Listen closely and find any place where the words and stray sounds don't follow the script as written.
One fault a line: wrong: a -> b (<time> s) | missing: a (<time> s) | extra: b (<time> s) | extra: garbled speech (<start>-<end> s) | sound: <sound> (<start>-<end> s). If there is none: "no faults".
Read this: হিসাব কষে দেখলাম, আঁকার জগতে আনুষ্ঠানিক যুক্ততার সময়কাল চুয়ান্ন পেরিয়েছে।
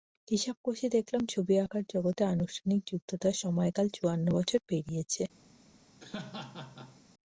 extra: ছবি (1.3 s)
extra: বছর (4.4 s)
sound: laugh (6.0-7.0 s)